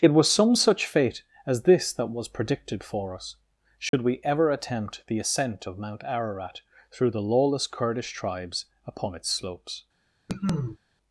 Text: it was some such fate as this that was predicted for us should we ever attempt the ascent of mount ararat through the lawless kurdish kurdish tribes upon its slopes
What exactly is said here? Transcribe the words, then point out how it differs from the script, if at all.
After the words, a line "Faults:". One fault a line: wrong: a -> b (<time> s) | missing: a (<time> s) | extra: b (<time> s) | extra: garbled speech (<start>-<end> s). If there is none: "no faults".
it was some such fate as this that was predicted for us should we ever attempt the ascent of mount ararat through the lawless kurdish tribes upon its slopes
Faults:
missing: kurdish (8.1 s)